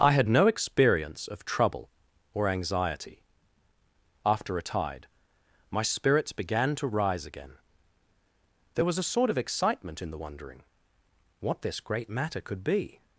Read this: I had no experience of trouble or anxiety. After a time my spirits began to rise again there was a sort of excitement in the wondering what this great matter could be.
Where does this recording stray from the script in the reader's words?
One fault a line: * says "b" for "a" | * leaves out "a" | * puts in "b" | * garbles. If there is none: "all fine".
* says "tide" for "time"